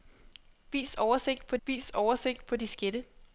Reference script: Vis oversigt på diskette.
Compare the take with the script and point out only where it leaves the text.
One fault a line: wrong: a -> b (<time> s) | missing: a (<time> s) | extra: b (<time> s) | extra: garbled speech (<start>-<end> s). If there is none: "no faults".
extra: vis oversigt på (1.7 s)